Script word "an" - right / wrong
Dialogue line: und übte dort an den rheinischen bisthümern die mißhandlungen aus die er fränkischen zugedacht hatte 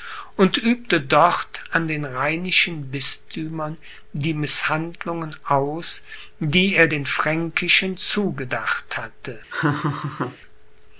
right